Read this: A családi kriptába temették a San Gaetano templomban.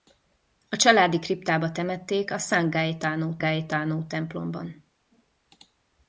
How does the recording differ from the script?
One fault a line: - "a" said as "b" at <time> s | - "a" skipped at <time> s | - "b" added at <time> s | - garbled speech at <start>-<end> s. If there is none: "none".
- "Gaetano" added at 3.4 s